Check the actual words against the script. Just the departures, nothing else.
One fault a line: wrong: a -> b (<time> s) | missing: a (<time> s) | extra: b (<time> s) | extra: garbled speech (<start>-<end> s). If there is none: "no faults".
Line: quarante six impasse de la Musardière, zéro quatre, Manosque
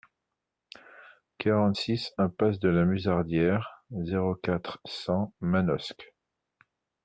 extra: cent (4.8 s)